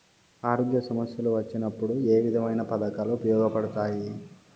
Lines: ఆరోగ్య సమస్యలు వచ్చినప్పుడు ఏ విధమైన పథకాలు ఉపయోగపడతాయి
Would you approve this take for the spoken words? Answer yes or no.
yes